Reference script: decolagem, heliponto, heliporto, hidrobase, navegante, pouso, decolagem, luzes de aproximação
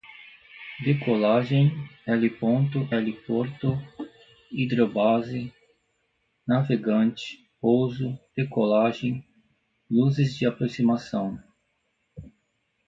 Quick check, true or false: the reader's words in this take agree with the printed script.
true